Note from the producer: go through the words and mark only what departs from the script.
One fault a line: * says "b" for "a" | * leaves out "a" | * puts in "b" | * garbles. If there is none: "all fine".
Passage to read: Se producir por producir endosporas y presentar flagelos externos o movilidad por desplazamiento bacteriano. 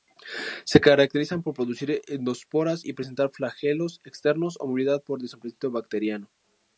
* says "caracterizan" for "producir"